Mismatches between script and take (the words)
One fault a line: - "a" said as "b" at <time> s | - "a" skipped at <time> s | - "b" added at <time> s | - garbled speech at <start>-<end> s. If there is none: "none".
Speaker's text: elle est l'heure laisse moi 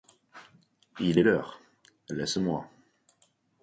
- "elle" said as "il" at 1.0 s